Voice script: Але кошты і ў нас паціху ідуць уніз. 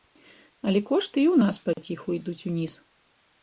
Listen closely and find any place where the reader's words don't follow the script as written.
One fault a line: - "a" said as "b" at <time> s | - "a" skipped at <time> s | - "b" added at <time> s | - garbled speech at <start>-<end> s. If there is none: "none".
none